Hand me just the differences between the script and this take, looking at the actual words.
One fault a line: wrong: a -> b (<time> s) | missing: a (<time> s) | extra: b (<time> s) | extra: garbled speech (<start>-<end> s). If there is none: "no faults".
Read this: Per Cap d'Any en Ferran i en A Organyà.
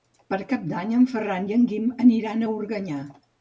extra: Guim aniran (1.7 s)